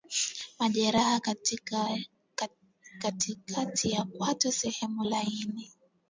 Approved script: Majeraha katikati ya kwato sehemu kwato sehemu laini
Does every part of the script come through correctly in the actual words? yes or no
no